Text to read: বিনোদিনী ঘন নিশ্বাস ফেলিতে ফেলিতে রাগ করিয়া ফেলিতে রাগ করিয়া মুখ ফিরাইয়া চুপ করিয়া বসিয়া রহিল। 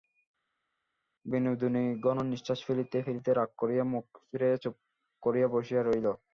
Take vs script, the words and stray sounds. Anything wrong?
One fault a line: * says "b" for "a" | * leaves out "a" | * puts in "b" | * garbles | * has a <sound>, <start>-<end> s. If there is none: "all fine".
* leaves out "ফেলিতে রাগ করিয়া"